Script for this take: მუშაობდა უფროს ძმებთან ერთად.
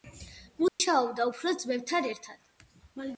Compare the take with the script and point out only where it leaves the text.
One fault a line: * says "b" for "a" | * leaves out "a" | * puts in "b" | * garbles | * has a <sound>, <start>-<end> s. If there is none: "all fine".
* has a dropout, 0.7-0.8 s